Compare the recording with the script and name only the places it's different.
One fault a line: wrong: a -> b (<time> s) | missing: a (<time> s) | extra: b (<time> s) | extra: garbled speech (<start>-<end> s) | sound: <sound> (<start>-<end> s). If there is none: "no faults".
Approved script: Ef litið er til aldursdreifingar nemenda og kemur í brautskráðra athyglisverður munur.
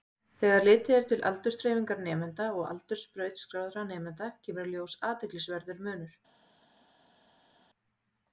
wrong: Ef -> Þegar (0.4 s)
extra: aldurs brautskráðra nemenda (2.7 s)
wrong: brautskráðra -> ljós (4.8 s)